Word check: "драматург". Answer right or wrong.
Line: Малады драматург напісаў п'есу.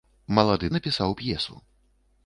wrong